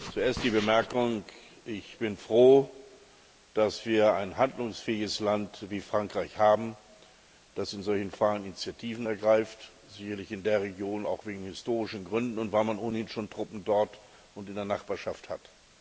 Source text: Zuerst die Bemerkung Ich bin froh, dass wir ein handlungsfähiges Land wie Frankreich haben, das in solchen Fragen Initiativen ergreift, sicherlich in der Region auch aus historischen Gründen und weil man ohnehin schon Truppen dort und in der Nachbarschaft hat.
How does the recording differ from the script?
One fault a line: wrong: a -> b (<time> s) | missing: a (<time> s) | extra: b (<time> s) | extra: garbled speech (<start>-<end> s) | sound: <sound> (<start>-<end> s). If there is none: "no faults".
no faults